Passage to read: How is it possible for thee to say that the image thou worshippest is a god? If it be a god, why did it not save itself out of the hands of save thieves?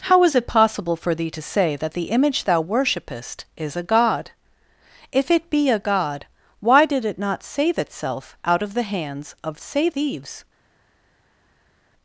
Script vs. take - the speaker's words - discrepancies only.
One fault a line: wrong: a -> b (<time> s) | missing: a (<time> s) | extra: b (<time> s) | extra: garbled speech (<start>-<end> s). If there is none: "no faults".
no faults